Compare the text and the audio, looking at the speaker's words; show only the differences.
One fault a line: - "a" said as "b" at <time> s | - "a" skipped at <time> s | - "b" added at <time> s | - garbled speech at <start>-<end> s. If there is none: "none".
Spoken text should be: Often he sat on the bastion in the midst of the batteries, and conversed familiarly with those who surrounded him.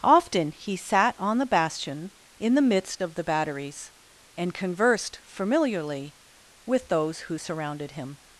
none